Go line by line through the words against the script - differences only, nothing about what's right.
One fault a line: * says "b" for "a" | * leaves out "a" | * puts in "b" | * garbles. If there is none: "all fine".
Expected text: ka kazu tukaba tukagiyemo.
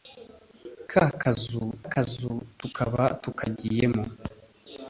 * puts in "kazu"